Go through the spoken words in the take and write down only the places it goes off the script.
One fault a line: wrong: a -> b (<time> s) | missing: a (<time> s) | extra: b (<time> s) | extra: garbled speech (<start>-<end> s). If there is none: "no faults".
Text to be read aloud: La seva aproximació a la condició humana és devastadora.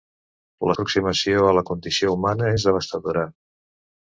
missing: seva (0.8 s)